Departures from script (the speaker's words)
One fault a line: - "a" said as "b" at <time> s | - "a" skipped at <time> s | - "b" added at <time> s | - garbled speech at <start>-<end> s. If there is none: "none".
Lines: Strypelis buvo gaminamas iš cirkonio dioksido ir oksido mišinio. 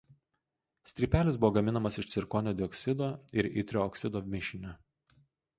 - "itrio" added at 3.6 s